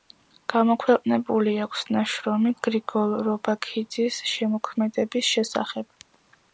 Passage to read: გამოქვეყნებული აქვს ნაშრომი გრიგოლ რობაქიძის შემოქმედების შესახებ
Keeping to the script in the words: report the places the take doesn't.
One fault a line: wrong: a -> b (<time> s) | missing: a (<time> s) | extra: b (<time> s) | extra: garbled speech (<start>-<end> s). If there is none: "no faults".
no faults